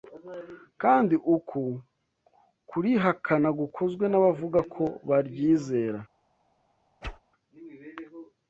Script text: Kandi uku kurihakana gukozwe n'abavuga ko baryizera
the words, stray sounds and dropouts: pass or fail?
fail